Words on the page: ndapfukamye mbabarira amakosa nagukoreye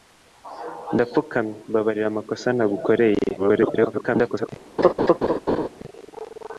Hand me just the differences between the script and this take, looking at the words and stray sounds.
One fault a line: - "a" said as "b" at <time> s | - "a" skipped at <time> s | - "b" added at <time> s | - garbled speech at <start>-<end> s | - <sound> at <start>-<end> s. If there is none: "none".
- garbled speech at 3.4-4.5 s
- laugh at 4.8-5.7 s